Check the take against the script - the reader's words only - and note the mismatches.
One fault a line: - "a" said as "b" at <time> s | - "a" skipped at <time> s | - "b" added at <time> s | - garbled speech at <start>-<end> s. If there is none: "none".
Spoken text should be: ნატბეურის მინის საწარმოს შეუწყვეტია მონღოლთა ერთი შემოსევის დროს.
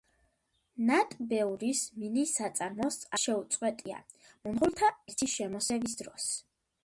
none